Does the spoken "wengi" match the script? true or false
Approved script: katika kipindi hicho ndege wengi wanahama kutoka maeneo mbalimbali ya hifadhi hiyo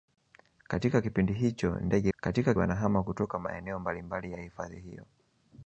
false